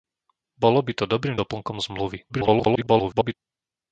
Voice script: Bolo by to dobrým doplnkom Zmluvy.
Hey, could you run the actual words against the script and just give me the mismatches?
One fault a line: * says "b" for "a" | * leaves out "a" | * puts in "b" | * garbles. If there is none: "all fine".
* garbles